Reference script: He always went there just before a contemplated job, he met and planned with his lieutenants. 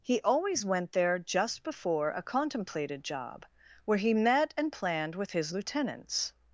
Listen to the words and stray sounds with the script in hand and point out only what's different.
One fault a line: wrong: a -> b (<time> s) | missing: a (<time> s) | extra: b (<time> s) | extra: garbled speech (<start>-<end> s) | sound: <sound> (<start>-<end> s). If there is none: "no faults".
extra: where (3.9 s)